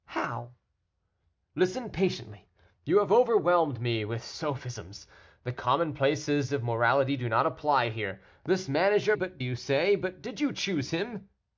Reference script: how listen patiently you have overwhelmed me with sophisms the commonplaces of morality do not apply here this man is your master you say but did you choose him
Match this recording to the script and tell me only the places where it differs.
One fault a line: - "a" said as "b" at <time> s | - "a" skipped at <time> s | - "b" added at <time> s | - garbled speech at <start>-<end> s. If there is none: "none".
- "master" said as "but" at 9.1 s